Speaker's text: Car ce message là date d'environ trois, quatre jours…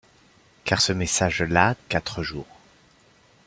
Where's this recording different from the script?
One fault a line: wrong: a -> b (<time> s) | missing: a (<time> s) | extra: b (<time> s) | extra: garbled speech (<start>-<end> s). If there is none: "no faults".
missing: date d'environ trois (1.7 s)